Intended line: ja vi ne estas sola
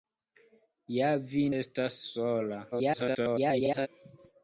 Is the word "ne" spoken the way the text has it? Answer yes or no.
no